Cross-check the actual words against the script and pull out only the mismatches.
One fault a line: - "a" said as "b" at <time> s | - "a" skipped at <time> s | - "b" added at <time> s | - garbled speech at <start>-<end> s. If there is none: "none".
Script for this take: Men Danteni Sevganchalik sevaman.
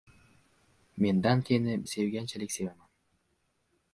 none